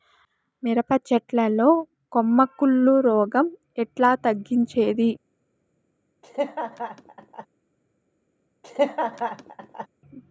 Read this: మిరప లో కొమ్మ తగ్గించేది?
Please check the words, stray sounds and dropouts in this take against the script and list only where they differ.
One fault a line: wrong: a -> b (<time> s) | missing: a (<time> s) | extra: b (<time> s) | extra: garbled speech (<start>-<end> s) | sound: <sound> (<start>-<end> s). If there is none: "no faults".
extra: చెట్ల (1.1 s)
extra: కుళ్ళు రోగం ఎట్లా (2.6 s)
sound: laugh (6.2-7.5 s)
sound: laugh (8.6-9.9 s)